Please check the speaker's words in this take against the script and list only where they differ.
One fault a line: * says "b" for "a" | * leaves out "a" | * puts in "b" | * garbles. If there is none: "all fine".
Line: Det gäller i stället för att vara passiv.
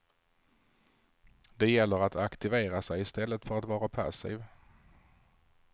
* puts in "att aktivera sig"